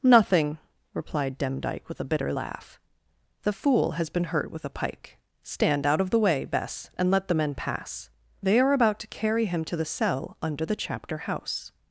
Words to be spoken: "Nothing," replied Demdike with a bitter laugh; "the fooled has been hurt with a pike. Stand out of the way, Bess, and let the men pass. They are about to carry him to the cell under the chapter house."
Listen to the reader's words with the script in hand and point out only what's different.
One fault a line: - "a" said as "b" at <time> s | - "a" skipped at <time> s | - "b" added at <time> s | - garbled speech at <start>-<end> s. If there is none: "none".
- "fooled" said as "fool" at 3.5 s